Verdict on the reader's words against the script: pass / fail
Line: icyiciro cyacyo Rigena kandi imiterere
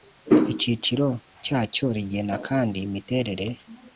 pass